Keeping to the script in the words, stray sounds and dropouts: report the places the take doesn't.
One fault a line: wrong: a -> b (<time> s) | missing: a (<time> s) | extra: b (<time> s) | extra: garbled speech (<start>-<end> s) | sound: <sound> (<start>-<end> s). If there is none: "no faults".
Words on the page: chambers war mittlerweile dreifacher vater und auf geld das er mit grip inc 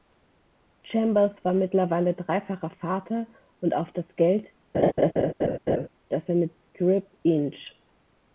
extra: das (3.9 s)
sound: laugh (4.7-5.9 s)